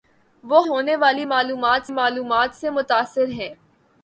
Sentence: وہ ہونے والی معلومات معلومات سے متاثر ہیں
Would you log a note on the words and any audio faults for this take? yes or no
no